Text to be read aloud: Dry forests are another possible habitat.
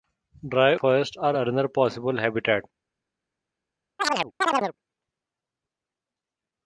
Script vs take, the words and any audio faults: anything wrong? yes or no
yes